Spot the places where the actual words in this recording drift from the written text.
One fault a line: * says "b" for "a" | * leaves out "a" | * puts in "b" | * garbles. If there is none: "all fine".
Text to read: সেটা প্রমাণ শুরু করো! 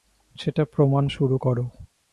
all fine